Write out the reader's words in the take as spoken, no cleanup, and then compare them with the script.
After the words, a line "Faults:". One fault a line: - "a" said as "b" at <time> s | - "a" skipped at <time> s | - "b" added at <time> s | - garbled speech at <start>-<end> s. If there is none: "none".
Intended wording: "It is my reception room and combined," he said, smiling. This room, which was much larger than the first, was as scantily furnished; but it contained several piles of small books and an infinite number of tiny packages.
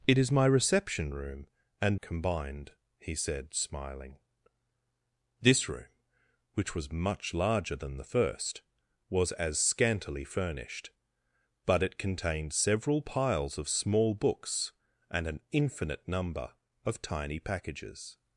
"It is my reception room and combined," he said, smiling. This room, which was much larger than the first, was as scantily furnished; but it contained several piles of small books and an infinite number of tiny packages.
Faults:
none